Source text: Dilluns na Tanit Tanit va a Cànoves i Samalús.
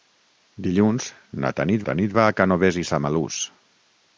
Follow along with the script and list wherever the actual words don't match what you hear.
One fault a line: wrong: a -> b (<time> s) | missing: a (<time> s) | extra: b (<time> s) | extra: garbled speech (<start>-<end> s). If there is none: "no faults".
no faults